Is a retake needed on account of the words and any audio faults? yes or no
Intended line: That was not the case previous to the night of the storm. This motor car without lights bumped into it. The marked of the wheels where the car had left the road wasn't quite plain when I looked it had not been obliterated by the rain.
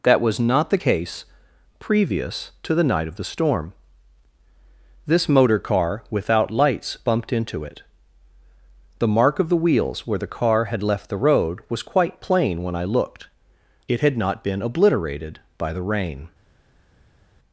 yes